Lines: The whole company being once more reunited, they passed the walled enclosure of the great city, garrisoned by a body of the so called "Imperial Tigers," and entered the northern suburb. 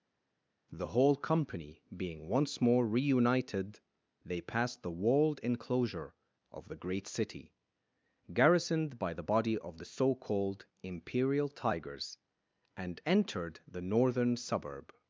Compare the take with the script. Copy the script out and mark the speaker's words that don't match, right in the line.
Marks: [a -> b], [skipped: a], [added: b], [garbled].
The whole company being once more reunited, they passed the walled enclosure of the great city, garrisoned by [a -> the] body of the so called "Imperial Tigers," and entered the northern suburb.